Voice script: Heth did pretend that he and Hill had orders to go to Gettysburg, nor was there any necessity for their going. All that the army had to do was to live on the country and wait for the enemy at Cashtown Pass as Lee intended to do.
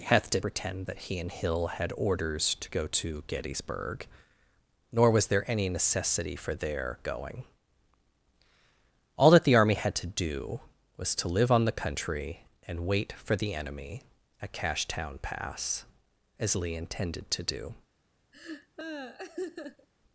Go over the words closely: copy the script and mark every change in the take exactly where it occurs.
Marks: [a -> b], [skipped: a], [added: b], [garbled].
Heth did pretend that he and Hill had orders to go to Gettysburg, nor was there any necessity for their going. All that the army had to do was to live on the country and wait for the enemy at Cashtown Pass as Lee intended to do.